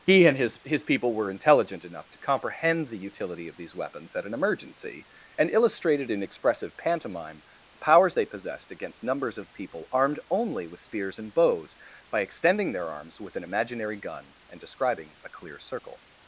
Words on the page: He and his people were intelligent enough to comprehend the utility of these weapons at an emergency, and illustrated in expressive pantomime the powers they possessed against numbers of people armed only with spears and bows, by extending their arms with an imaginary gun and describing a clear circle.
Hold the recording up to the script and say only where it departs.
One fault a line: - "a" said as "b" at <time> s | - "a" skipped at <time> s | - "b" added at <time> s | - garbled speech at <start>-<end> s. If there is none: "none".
- "his" added at 0.6 s